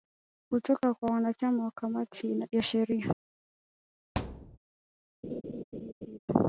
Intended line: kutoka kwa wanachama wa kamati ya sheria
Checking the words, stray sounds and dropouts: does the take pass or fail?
fail